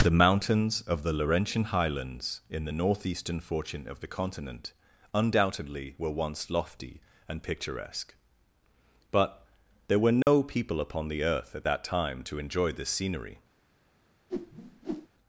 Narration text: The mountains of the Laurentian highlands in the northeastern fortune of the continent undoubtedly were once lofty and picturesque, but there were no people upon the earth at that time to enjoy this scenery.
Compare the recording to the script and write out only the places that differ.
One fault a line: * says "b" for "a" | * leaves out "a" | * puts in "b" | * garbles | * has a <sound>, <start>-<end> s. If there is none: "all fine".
* has a dropout, 10.2-10.3 s
* has a whoosh, 14.3-15.1 s